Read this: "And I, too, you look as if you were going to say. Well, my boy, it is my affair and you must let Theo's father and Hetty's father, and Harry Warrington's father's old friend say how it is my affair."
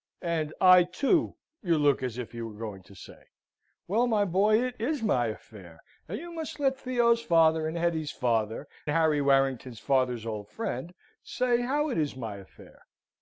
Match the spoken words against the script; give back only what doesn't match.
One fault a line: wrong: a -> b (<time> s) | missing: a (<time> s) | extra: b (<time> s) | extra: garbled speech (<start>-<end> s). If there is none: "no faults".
missing: and (8.7 s)